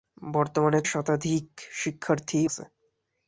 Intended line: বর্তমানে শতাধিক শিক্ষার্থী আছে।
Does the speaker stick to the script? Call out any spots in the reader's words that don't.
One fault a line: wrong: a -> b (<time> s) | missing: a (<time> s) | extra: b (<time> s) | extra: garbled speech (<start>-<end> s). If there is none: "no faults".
no faults